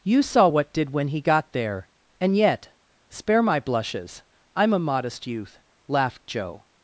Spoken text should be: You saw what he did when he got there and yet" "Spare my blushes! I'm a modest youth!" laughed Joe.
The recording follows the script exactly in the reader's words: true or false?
false